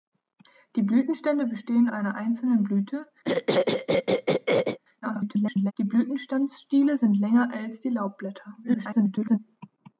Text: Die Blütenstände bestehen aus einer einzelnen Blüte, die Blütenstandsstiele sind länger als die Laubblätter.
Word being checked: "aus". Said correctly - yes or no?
no